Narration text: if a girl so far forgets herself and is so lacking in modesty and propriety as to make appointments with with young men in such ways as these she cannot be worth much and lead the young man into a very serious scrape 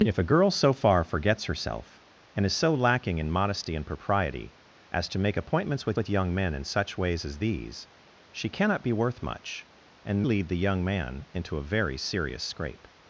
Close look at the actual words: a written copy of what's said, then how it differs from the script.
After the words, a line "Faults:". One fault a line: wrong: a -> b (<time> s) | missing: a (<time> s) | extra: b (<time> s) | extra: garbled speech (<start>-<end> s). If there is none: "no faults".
if a girl so far forgets herself and is so lacking in modesty and propriety as to make appointments with with young men in such ways as these she cannot be worth much and lead the young man into a very serious scrape
Faults:
no faults